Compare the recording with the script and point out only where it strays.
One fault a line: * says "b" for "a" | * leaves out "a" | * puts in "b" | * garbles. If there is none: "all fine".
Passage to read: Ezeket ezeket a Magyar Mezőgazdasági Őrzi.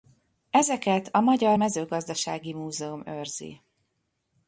* leaves out "ezeket"
* puts in "Múzeum"